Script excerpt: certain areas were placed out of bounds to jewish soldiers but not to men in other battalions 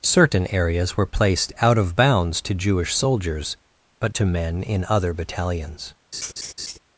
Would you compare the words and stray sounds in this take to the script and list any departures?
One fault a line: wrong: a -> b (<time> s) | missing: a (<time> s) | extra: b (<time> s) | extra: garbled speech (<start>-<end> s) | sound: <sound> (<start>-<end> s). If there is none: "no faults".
missing: not (4.2 s)
sound: laugh (6.1-6.8 s)